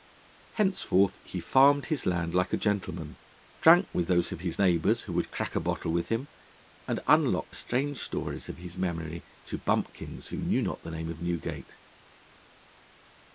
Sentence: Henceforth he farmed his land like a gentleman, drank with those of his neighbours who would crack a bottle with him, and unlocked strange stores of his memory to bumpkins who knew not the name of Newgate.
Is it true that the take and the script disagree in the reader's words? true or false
false